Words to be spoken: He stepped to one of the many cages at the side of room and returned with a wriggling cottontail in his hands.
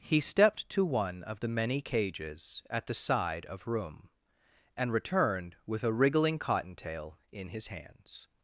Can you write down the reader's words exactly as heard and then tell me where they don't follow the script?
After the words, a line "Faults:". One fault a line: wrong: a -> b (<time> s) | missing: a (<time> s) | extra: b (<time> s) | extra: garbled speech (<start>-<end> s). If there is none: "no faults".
He stepped to one of the many cages at the side of room and returned with a wriggling cottontail in his hands.
Faults:
no faults